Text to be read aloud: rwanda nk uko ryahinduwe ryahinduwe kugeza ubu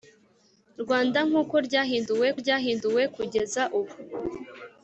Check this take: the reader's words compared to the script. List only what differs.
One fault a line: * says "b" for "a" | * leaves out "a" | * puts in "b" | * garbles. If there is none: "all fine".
all fine